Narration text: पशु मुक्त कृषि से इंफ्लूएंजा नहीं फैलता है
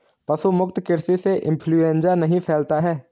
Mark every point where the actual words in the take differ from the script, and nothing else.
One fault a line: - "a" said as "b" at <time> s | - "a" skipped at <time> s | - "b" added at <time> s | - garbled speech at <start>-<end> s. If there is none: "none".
none